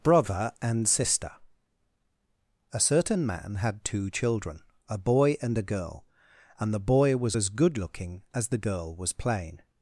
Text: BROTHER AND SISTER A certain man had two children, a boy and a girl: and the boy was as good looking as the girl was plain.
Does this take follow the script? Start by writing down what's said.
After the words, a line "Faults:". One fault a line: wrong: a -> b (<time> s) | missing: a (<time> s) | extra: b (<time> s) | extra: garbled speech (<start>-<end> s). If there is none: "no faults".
BROTHER AND SISTER A certain man had two children, a boy and a girl: and the boy was as good looking as the girl was plain.
Faults:
no faults